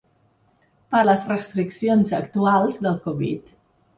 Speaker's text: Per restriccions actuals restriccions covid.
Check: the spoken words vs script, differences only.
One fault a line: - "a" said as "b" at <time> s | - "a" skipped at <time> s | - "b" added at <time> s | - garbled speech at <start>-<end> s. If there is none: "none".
- "les" added at 1.1 s
- "restriccions" said as "del" at 2.9 s